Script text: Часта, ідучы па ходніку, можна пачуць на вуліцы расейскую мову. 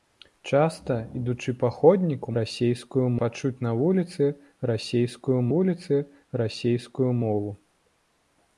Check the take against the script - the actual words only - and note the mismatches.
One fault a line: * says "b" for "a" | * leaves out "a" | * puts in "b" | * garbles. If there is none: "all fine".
* says "расейскую" for "можна"
* puts in "вуліцы расейскую"